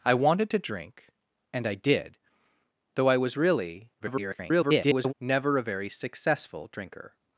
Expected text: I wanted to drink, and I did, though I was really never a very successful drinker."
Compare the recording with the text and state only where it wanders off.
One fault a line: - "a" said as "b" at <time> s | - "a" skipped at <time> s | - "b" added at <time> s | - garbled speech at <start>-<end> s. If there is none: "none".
- garbled speech at 4.0-5.1 s